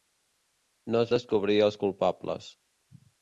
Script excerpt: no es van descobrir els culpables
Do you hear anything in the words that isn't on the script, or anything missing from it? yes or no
yes